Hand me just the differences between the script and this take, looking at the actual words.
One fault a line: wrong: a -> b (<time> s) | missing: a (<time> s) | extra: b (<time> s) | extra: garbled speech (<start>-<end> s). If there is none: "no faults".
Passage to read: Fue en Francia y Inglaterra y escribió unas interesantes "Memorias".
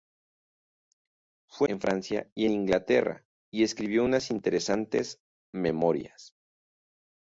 no faults